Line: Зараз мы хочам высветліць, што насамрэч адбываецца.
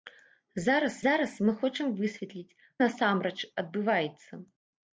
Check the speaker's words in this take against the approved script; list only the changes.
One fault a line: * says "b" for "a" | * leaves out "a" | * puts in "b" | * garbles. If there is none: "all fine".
* puts in "зараз"
* leaves out "што"